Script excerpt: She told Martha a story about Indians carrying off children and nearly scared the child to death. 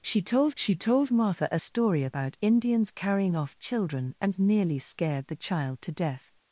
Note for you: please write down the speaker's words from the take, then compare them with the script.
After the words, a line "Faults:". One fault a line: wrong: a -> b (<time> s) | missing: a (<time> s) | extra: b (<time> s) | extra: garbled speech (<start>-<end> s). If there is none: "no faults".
She told she told Martha a story about Indians carrying off children and nearly scared the child to death.
Faults:
extra: she told (0.6 s)